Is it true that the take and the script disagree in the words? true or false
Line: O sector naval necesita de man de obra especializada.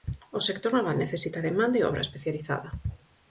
false